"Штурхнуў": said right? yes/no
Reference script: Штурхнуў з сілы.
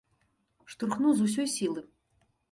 yes